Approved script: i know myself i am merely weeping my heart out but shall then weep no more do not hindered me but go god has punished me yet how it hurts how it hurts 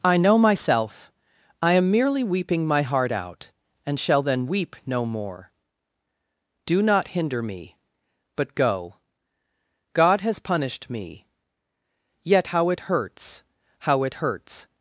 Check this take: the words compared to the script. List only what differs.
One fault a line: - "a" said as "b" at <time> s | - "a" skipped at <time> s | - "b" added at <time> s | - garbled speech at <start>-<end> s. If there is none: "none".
- "but" said as "and" at 3.9 s
- "hindered" said as "hinder" at 7.1 s